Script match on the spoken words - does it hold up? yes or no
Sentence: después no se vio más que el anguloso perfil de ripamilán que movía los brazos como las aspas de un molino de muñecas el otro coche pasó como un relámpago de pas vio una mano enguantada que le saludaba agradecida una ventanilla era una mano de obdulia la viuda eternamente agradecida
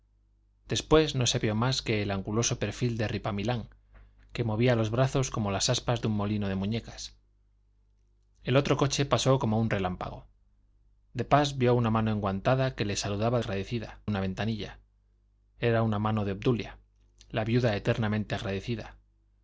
yes